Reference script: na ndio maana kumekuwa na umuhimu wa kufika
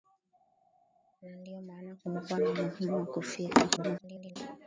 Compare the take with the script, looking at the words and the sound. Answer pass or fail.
fail